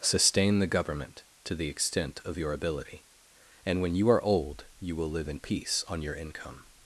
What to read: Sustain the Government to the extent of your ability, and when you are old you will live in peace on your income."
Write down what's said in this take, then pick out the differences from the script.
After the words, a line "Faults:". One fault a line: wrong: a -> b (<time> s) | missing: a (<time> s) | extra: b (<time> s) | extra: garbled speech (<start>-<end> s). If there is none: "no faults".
Sustain the Government to the extent of your ability, and when you are old you will live in peace on your income."
Faults:
no faults